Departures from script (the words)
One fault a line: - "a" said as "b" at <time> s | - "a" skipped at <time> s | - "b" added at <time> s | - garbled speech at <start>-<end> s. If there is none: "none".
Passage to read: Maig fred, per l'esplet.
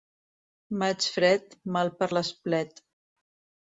- "mal" added at 1.8 s